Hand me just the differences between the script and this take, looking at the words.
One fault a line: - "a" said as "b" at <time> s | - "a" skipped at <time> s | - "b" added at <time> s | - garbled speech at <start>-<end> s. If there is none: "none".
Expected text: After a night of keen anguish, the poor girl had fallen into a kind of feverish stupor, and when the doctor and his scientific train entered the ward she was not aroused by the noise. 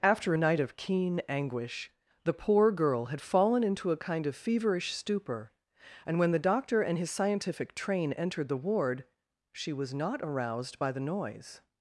none